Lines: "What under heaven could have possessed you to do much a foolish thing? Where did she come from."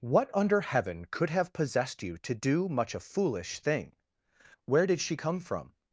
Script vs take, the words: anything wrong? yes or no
no